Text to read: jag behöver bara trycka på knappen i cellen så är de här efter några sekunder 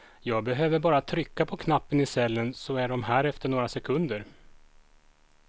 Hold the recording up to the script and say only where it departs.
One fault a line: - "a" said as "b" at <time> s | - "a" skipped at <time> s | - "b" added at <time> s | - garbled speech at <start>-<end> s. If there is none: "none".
none